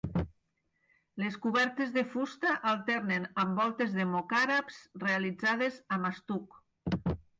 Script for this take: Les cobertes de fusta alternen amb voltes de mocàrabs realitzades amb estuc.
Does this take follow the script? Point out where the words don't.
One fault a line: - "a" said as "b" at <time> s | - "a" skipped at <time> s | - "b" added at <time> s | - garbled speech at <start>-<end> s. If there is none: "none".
none